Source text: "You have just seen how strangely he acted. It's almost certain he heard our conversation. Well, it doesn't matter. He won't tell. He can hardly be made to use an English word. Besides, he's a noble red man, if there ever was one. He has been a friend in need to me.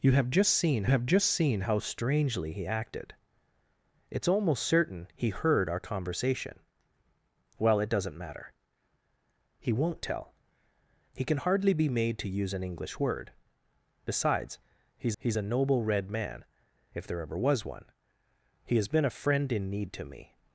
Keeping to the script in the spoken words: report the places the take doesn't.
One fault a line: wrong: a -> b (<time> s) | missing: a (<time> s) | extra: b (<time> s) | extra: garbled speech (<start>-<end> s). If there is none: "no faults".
extra: have just seen (0.9 s)
extra: he's (15.2 s)